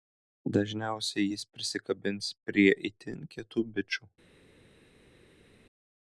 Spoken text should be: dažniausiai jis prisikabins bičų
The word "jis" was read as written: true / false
true